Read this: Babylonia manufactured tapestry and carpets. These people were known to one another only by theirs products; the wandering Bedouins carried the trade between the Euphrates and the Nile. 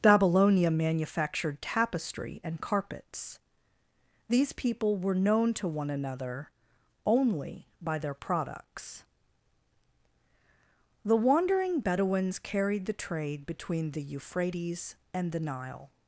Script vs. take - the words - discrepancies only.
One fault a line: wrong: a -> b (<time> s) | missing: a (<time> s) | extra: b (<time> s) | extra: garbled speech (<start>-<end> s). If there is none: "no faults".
wrong: theirs -> their (8.0 s)